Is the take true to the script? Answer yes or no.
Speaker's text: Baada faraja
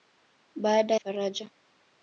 yes